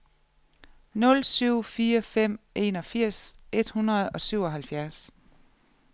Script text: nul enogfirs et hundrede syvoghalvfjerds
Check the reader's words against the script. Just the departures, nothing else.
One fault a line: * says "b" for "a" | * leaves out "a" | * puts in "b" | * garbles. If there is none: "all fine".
* puts in "syv fire fem"
* puts in "og"